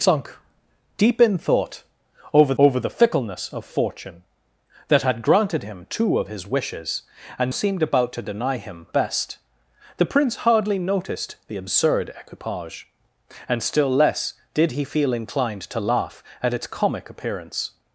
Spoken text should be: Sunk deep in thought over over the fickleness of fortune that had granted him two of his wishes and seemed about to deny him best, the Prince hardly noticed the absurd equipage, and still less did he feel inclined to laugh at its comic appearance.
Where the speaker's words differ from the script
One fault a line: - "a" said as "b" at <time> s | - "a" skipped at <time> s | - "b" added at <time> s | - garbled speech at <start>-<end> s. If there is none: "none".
none